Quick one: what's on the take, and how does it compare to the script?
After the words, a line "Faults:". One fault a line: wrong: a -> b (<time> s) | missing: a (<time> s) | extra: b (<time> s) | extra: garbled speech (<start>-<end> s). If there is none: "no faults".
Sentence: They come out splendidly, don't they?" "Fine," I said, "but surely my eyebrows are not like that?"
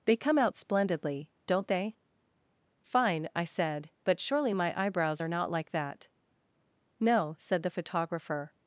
They come out splendidly, don't they?" "Fine," I said, "but surely my eyebrows are not like that?" "No," said the photographer
Faults:
extra: No said the photographer (7.0 s)